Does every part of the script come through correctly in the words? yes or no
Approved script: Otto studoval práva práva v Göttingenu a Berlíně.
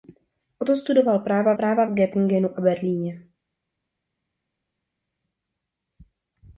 yes